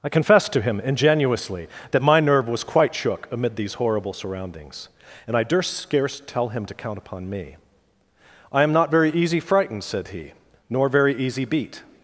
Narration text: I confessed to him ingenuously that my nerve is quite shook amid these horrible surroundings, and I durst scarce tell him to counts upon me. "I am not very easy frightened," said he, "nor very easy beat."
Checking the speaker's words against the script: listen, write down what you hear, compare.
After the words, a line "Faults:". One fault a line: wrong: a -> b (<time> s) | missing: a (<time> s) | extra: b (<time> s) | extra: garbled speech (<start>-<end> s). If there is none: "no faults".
I confessed to him ingenuously that my nerve was quite shook amid these horrible surroundings, and I durst scarce tell him to count upon me. "I am not very easy frightened," said he, "nor very easy beat."
Faults:
wrong: is -> was (2.5 s)
wrong: counts -> count (6.7 s)